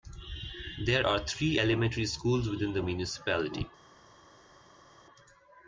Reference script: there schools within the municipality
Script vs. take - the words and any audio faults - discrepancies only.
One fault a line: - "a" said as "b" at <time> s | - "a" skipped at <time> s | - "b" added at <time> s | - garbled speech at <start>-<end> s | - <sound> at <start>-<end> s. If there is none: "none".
- "are three elementary" added at 1.0 s